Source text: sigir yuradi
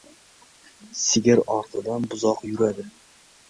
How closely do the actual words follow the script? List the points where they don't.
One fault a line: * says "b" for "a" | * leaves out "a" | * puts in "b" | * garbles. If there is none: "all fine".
* puts in "ortidan buzoq"